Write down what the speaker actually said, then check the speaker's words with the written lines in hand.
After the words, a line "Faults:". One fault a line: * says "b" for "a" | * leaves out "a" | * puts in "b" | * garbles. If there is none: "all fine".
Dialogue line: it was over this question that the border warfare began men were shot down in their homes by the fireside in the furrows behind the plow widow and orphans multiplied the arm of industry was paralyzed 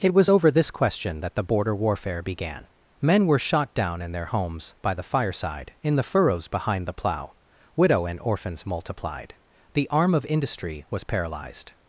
it was over this question that the border warfare began men were shot down in their homes by the fireside in the furrows behind the plow widow and orphans multiplied the arm of industry was paralyzed
Faults:
all fine